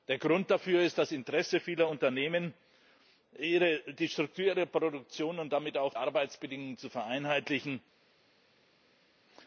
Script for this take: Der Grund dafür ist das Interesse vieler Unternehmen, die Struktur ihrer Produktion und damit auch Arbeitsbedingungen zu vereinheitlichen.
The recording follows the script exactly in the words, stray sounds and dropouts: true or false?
true